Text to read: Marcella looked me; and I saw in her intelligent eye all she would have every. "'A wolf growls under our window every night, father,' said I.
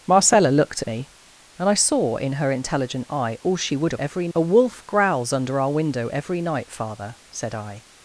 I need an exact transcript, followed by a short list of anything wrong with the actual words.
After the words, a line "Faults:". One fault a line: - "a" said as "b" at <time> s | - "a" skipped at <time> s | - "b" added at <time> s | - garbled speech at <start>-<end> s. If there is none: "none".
Marcella looked me; and I saw in her intelligent eye all she would have every. "'A wolf growls under our window every night, father,' said I.
Faults:
none